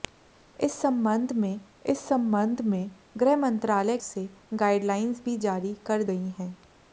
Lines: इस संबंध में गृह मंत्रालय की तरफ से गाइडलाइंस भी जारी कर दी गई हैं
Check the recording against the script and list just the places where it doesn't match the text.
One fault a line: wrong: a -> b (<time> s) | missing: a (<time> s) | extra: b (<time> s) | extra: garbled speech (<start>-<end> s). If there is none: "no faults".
extra: इस संबंध में (1.8 s)
missing: की तरफ (4.0 s)
missing: दी (6.0 s)